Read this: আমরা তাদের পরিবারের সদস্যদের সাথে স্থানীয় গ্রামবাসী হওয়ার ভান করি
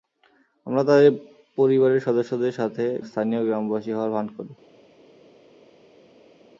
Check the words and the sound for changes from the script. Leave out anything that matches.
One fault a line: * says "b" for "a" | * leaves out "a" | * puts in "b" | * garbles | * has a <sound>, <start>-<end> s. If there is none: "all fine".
all fine